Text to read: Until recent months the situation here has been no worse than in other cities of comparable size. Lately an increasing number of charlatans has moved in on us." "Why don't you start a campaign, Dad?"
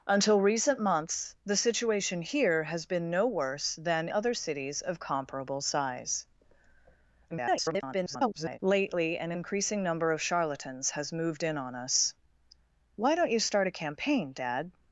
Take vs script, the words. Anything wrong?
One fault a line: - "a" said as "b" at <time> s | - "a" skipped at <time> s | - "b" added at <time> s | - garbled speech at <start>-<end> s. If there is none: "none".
- "in" skipped at 4.1 s
- garbled speech at 7.3-8.6 s